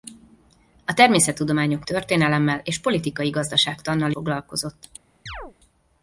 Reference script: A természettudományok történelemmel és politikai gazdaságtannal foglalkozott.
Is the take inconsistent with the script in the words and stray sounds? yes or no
yes